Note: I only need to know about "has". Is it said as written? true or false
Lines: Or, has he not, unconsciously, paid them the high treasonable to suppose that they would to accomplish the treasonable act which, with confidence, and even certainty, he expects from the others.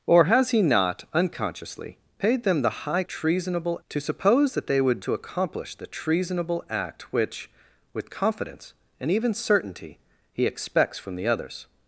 true